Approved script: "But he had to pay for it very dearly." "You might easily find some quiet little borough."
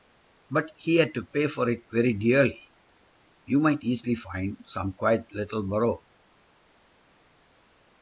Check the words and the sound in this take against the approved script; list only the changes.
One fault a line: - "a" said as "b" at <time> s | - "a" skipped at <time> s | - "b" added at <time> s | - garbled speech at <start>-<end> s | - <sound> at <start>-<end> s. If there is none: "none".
none